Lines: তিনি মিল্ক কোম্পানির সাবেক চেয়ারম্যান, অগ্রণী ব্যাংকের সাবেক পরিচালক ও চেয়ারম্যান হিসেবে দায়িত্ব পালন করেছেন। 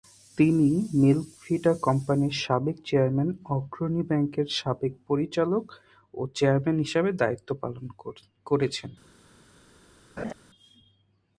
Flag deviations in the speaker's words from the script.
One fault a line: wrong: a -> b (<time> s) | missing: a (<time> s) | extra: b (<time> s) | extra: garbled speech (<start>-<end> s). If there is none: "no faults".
extra: ভিটা (1.4 s)